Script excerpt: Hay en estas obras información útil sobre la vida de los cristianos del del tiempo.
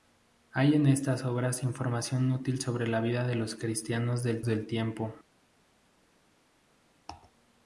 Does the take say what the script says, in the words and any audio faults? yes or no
yes